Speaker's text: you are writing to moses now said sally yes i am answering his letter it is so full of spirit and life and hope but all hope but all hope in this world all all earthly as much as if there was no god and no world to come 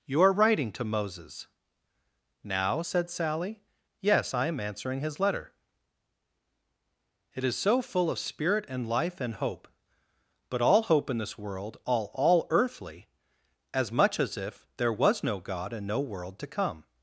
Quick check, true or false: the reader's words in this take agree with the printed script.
false